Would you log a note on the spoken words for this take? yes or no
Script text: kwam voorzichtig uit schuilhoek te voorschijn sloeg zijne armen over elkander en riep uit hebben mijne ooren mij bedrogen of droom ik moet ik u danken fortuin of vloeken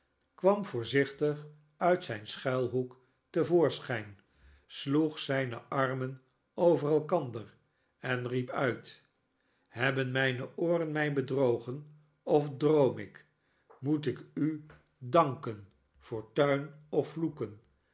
yes